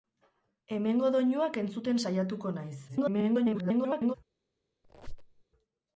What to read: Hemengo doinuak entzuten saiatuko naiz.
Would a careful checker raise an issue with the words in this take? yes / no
yes